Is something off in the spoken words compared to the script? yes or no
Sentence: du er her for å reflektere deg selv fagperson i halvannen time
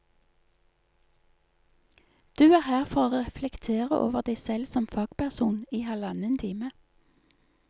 yes